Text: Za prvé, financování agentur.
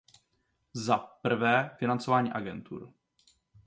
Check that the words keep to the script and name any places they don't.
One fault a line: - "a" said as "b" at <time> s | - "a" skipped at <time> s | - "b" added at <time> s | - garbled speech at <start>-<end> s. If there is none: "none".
none